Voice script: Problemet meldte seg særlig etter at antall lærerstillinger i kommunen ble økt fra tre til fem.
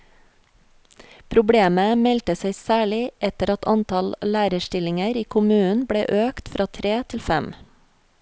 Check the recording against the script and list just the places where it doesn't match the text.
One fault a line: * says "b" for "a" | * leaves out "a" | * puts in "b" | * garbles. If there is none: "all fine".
all fine